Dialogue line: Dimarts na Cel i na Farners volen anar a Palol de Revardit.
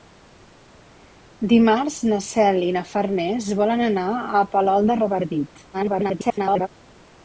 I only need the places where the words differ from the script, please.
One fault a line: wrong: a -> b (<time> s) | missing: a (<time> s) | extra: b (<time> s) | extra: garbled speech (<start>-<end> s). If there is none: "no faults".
extra: garbled speech (5.7-6.7 s)